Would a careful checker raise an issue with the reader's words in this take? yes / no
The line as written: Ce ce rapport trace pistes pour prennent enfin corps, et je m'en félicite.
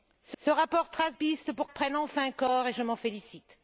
no